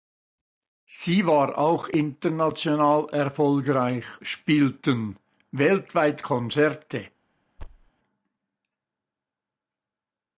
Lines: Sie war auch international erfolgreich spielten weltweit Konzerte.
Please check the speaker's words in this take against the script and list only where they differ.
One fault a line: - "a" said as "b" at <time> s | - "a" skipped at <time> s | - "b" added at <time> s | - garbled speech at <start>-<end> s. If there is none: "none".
none